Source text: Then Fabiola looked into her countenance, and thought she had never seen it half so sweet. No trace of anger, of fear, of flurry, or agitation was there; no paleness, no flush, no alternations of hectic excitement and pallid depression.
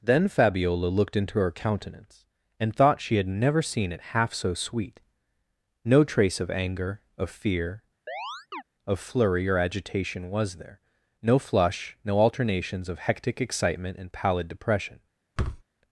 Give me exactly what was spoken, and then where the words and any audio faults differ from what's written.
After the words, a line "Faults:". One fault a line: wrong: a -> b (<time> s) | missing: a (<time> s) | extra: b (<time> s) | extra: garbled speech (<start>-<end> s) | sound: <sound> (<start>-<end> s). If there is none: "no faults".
Then Fabiola looked into her countenance, and thought she had never seen it half so sweet. No trace of anger, of fear, of flurry, or agitation was there; no flush, no alternations of hectic excitement and pallid depression.
Faults:
sound: chirp (8.1-8.6 s)
missing: paleness no (11.4 s)
sound: thud (15.4-15.6 s)